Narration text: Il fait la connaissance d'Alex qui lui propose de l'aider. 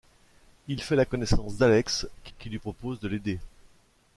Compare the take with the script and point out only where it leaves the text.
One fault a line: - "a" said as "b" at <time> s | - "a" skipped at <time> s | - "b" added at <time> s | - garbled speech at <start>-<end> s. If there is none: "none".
- "qui" added at 2.4 s